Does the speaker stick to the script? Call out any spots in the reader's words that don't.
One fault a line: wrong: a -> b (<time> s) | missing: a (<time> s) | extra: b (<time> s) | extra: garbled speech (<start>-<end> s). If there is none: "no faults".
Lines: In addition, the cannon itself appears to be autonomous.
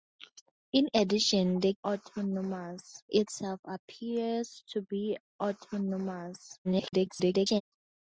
wrong: cannon -> autonomous (1.9 s)
extra: garbled speech (6.6-7.6 s)